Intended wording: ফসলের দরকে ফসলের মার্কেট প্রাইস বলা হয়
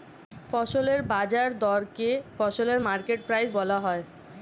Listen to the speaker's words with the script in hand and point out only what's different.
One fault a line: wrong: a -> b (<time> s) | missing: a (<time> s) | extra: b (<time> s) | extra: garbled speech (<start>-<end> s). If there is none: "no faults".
extra: বাজার (1.1 s)